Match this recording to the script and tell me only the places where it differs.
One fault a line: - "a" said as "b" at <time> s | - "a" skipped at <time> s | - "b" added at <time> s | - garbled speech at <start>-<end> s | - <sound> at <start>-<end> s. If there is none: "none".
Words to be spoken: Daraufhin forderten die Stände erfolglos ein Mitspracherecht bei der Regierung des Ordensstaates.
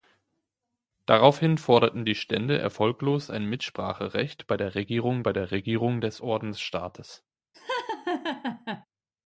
- "bei der Regierung" added at 5.2 s
- laugh at 7.5-8.9 s